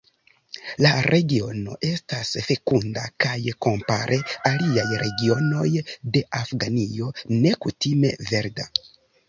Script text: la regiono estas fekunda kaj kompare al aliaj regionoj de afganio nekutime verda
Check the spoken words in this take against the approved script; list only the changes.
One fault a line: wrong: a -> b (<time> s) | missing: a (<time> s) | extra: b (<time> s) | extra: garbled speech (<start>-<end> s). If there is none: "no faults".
missing: al (4.2 s)